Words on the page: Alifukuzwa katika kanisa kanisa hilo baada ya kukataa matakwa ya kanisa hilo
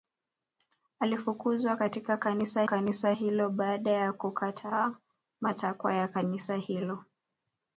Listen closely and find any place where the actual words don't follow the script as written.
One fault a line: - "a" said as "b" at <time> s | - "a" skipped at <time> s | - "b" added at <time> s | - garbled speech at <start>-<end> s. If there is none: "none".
none